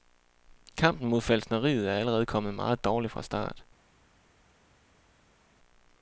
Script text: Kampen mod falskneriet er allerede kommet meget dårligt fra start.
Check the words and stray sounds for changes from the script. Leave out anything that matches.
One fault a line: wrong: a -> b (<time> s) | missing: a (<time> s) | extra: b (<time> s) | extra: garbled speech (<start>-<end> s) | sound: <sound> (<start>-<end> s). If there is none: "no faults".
no faults